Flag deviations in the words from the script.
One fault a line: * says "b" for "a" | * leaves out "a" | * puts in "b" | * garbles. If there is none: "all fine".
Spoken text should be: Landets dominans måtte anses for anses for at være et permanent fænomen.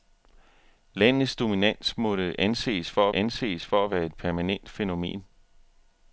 all fine